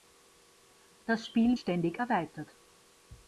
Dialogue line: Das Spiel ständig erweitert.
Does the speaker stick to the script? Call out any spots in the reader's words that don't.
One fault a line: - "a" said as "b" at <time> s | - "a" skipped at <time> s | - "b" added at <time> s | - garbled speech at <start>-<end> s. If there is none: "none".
none